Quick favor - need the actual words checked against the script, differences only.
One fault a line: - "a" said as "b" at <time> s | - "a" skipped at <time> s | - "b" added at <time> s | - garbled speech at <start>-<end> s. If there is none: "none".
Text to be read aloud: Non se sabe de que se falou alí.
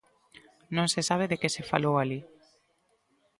none